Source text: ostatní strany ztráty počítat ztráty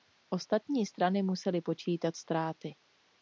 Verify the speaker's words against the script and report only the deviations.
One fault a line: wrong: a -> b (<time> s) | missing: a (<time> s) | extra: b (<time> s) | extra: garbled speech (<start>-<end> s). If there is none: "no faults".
wrong: ztráty -> musely (1.2 s)